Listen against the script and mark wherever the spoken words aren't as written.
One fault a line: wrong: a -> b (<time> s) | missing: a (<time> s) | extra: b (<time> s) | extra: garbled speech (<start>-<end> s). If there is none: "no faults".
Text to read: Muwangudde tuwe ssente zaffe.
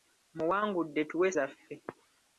missing: ssente (1.3 s)